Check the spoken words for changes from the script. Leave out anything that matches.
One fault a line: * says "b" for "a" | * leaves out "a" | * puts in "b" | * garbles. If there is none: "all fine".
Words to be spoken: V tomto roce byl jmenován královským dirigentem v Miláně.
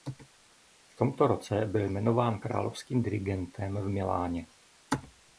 all fine